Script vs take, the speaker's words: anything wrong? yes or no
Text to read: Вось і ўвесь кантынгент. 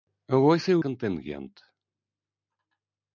yes